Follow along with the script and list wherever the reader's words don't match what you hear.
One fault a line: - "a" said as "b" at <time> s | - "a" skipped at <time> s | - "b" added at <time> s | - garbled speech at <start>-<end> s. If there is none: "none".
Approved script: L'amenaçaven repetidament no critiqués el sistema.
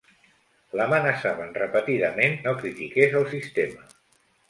none